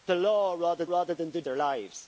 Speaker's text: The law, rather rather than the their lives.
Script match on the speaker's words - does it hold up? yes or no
yes